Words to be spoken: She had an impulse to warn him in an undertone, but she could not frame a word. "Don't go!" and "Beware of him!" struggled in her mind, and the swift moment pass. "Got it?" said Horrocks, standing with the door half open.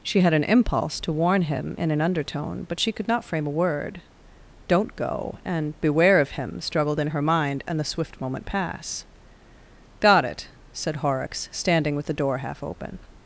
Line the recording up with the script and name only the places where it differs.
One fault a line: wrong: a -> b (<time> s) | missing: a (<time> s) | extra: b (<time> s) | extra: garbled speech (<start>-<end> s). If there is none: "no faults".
no faults